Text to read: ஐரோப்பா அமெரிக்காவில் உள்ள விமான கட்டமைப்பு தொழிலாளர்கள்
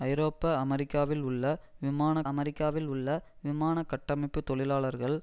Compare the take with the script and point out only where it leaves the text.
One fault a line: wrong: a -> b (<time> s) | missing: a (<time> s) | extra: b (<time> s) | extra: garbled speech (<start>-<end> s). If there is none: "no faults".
extra: அமெரிக்காவில் உள்ள விமான (2.2 s)